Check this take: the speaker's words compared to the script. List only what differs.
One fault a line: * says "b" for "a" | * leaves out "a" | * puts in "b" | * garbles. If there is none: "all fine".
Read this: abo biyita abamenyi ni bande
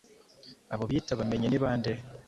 all fine